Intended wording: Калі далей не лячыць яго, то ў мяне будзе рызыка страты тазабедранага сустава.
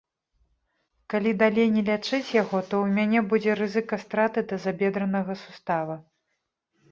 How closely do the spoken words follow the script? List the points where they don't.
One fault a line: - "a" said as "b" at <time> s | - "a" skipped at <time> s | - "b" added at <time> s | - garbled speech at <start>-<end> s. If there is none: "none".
none